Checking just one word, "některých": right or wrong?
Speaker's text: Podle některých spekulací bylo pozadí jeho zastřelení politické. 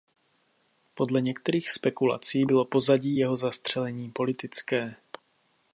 right